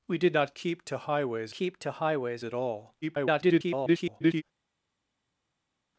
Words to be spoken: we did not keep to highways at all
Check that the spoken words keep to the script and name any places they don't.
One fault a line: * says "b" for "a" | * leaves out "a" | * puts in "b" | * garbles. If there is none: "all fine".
* puts in "keep to highways"
* garbles